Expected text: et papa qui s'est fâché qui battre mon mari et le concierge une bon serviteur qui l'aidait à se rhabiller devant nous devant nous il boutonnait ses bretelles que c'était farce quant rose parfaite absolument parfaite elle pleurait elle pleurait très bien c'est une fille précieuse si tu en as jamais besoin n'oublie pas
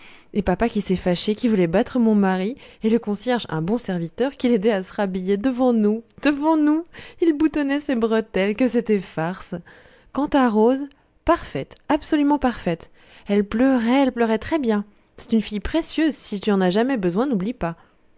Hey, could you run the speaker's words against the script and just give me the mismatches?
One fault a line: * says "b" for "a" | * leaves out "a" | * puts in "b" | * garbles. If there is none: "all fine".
* puts in "voulait"
* says "un" for "une"
* puts in "à"